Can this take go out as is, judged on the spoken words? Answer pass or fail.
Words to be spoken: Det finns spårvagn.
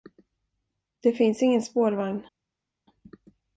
fail